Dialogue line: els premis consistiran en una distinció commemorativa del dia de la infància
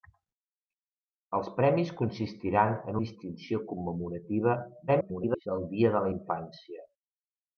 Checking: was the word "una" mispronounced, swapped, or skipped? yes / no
yes